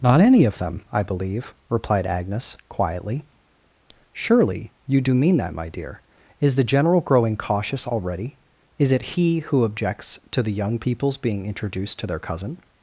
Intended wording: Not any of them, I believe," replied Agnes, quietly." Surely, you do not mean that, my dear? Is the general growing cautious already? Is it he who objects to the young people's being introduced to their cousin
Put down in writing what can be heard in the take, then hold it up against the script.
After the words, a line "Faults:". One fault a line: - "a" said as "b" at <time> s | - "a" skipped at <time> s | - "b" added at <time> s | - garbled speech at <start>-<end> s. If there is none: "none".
Not any of them, I believe," replied Agnes, quietly." Surely, you do mean that, my dear? Is the general growing cautious already? Is it he who objects to the young people's being introduced to their cousin
Faults:
- "not" skipped at 5.1 s